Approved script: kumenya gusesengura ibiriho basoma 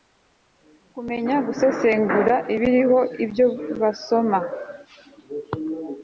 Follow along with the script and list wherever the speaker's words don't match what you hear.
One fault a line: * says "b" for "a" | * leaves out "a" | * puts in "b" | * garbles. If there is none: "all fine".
* puts in "ibyo"